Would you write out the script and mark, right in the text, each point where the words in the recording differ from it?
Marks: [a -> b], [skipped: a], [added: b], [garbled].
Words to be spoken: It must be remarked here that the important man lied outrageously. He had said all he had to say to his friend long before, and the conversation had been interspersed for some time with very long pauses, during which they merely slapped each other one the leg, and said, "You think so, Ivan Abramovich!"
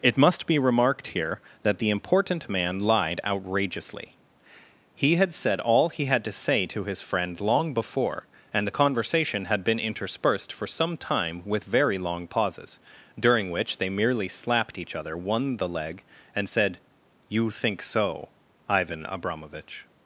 It must be remarked here that the important man lied outrageously. He had said all he had to say to his friend long before, and the conversation had been interspersed for some time with very long pauses, during which they merely slapped each other one the leg, and said, "You think so, Ivan Abramovich!"